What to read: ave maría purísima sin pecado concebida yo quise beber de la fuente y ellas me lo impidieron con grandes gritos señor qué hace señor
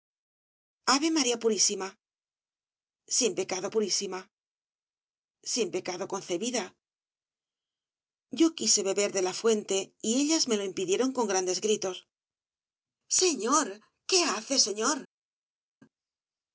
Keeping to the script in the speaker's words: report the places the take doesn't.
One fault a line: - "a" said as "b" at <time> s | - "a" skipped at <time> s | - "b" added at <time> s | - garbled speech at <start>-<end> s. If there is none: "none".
- "purísima sin pecado" added at 3.7 s